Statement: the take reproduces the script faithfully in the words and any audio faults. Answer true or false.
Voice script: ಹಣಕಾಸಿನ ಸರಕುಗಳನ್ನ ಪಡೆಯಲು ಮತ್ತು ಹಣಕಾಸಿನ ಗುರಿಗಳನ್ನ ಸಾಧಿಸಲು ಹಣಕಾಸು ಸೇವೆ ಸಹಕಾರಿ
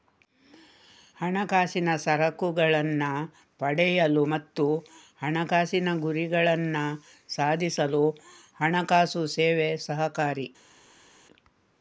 true